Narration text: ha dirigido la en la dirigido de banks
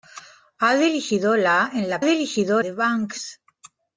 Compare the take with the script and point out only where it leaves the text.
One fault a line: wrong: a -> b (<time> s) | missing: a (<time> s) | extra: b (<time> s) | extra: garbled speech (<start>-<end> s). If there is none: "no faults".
no faults